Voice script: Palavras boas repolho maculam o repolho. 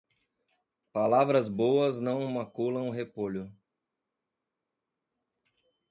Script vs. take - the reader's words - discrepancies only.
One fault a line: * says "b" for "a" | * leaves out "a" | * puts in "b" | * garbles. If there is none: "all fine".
* says "não" for "repolho"